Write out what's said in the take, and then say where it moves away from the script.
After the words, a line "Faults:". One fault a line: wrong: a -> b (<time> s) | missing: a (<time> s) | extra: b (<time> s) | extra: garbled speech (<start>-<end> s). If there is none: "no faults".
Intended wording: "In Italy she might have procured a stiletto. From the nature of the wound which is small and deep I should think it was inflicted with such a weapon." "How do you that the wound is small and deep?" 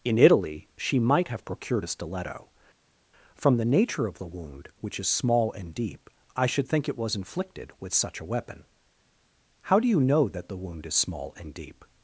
"In Italy she might have procured a stiletto. From the nature of the wound which is small and deep I should think it was inflicted with such a weapon." "How do you know that the wound is small and deep?"
Faults:
extra: know (10.0 s)